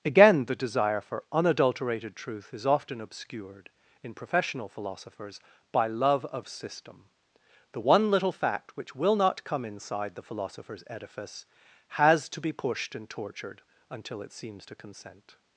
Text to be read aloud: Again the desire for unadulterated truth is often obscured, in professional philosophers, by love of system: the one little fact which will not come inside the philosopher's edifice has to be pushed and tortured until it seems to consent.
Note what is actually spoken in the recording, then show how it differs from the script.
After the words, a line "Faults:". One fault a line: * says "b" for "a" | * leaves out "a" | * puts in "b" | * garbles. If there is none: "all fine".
Again the desire for unadulterated truth is often obscured, in professional philosophers, by love of system: the one little fact which will not come inside the philosopher's edifice has to be pushed and tortured until it seems to consent.
Faults:
all fine